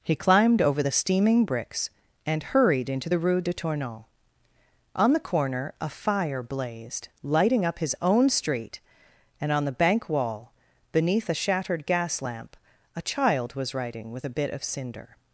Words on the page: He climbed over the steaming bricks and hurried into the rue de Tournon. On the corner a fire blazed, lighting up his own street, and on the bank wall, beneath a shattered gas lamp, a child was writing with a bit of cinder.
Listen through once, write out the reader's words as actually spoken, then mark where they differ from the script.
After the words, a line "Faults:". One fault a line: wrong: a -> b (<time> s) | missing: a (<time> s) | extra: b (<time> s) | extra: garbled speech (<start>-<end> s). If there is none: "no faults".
He climbed over the steaming bricks and hurried into the rue de Tournon. On the corner a fire blazed, lighting up his own street, and on the bank wall, beneath a shattered gas lamp, a child was writing with a bit of cinder.
Faults:
no faults